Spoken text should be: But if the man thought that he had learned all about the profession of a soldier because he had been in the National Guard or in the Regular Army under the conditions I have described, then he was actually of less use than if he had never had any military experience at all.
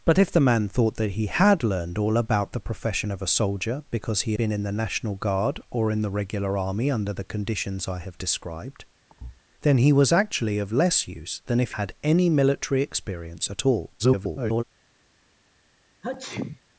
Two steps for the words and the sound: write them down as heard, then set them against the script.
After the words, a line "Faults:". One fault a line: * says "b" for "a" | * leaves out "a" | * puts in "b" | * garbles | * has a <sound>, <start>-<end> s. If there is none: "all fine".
But if the man thought that he had learned all about the profession of a soldier because he been in the National Guard or in the Regular Army under the conditions I have described, then he was actually of less use than if had any military experience at all. [garbled]
Faults:
* leaves out "had"
* has a thud, 9.1-9.4 s
* leaves out "he had never"
* garbles
* has a sneeze, 16.0-16.6 s